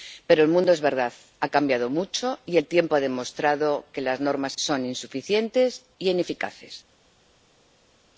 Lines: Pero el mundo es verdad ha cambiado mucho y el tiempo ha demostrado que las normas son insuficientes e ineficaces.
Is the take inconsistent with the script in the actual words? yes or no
no